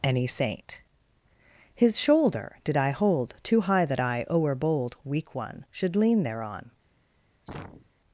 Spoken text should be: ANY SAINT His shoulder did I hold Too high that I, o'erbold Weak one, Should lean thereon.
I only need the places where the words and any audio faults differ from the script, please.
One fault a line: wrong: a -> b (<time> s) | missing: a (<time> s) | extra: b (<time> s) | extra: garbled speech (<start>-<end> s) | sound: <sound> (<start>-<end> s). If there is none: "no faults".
sound: sneeze (7.5-7.9 s)